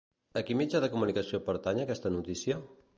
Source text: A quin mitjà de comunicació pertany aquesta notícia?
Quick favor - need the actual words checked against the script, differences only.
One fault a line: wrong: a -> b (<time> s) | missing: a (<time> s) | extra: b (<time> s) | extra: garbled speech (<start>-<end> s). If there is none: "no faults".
no faults